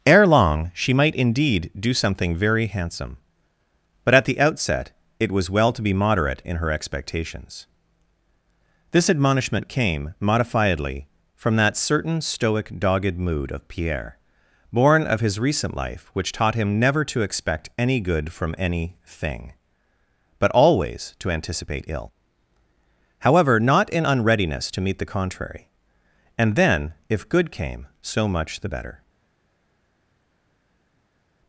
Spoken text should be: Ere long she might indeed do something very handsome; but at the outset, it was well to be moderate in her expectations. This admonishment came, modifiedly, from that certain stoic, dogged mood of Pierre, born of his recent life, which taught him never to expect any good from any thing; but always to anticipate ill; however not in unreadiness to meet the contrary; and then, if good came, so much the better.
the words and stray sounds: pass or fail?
pass